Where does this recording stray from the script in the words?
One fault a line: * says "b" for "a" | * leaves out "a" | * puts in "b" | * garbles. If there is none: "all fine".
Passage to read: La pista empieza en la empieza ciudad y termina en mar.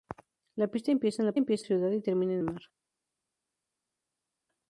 all fine